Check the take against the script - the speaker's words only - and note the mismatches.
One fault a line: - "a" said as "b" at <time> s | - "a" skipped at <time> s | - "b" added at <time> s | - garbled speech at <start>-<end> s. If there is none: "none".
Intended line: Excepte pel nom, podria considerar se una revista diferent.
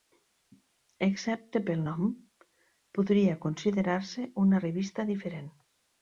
none